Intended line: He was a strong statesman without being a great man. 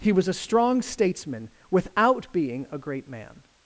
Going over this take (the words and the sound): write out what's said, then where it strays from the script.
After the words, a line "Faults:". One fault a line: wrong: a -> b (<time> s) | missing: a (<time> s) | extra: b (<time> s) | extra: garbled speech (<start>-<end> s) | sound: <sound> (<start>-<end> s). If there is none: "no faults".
He was a strong statesman without being a great man.
Faults:
no faults